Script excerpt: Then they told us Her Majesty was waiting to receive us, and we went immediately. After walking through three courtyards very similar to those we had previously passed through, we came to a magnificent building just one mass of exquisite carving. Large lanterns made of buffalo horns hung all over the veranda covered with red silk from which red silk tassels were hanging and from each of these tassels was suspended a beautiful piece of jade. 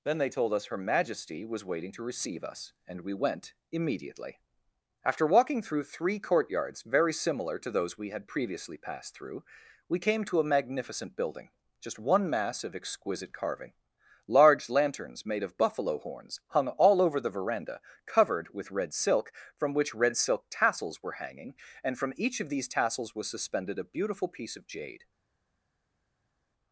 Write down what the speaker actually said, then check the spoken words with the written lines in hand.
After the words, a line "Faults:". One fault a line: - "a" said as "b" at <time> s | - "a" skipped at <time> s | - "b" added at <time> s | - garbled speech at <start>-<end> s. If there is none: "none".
Then they told us Her Majesty was waiting to receive us, and we went immediately. After walking through three courtyards very similar to those we had previously passed through, we came to a magnificent building just one mass of exquisite carving. Large lanterns made of buffalo horns hung all over the veranda covered with red silk from which red silk tassels were hanging and from each of these tassels was suspended a beautiful piece of jade.
Faults:
none